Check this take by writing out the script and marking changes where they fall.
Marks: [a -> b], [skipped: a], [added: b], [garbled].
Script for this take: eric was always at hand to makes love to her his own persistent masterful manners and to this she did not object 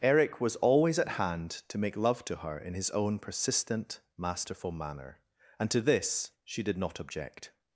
eric was always at hand to [makes -> make] love to her [added: in] his own persistent masterful [manners -> manner] and to this she did not object